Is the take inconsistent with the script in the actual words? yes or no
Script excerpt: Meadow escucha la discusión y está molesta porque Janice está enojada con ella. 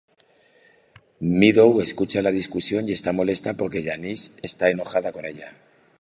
no